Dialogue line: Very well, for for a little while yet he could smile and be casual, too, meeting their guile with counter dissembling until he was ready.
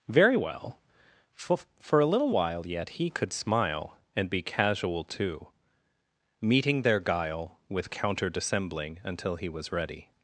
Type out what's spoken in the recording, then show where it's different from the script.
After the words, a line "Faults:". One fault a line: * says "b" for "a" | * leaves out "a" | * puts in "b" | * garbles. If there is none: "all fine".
Very well, for for a little while yet he could smile and be casual, too, meeting their guile with counter dissembling until he was ready.
Faults:
all fine